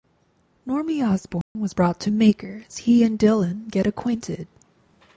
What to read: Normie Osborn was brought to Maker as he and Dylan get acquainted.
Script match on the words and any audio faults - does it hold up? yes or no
no